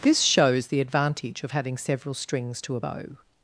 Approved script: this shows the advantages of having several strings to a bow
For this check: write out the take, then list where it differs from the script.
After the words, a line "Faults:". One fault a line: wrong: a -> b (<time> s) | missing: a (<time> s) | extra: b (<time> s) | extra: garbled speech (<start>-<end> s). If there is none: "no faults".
this shows the advantage of having several strings to a bow
Faults:
wrong: advantages -> advantage (0.8 s)